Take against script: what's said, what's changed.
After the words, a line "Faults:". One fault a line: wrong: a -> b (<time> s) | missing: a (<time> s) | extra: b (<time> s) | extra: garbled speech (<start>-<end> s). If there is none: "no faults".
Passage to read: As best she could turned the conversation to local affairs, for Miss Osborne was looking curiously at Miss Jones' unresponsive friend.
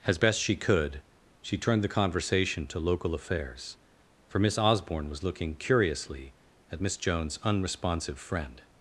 As best she could she turned the conversation to local affairs, for Miss Osborne was looking curiously at Miss Jones' unresponsive friend.
Faults:
extra: she (1.4 s)